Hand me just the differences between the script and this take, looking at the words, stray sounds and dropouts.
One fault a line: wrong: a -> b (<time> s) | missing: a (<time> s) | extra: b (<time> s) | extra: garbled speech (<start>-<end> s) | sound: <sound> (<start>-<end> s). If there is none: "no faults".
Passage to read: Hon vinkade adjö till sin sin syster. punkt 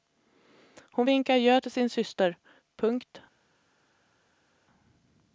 missing: sin (1.9 s)